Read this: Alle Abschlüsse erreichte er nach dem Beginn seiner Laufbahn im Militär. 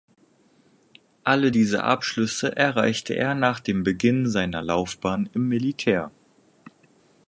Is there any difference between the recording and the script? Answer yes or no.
yes